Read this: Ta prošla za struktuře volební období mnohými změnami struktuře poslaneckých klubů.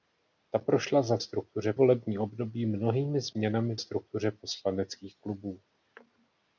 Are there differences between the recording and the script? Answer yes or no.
no